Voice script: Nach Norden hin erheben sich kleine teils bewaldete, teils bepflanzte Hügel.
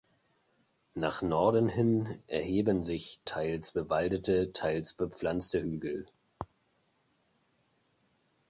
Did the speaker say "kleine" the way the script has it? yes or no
no